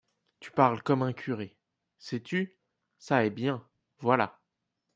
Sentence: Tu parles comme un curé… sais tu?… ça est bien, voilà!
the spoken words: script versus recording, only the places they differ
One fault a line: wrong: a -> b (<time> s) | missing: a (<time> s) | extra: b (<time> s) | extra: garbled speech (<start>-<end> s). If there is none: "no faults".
no faults